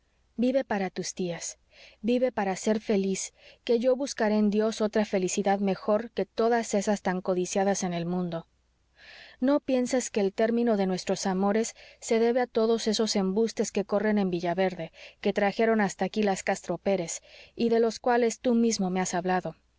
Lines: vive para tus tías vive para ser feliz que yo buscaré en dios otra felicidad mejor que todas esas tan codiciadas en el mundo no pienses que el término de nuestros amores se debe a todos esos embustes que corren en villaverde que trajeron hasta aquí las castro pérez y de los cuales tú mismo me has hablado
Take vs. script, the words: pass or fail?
pass